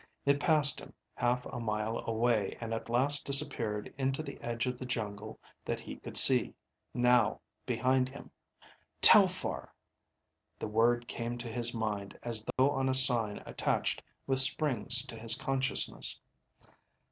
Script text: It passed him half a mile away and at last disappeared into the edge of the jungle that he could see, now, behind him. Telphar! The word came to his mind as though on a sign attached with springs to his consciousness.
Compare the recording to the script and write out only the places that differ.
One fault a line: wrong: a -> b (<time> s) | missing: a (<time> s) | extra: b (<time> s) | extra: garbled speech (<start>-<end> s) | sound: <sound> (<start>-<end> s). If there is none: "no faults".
sound: dropout (12.5-12.6 s)